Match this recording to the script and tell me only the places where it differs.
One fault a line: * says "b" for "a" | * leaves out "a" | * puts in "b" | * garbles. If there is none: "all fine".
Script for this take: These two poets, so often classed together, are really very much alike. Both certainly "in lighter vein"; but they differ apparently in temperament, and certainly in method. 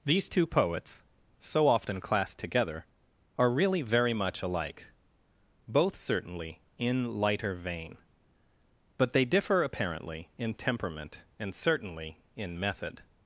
all fine